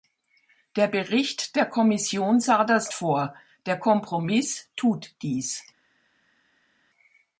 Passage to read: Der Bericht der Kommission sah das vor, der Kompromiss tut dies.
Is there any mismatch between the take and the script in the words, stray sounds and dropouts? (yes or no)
no